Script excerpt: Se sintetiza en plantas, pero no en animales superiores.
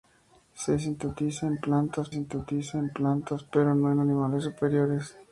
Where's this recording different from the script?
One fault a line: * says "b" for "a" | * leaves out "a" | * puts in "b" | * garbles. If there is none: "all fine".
* puts in "sintetiza en plantas"